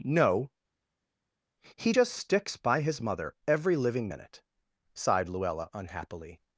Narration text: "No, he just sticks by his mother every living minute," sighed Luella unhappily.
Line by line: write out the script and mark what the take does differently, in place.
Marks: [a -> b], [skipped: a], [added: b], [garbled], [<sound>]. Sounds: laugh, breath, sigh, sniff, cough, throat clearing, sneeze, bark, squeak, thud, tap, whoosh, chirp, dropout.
"No, he just sticks by his mother every living minute," sighed Luella unhappily.